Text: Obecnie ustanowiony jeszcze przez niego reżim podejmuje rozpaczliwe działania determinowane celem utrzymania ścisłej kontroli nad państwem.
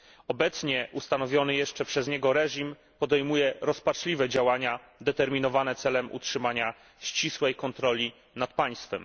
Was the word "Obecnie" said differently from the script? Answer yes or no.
no